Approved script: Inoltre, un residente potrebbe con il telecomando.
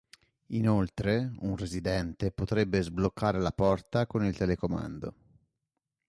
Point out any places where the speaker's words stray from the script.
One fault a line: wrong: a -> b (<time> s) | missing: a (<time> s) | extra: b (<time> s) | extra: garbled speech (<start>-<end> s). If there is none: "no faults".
extra: sbloccare la porta (2.8 s)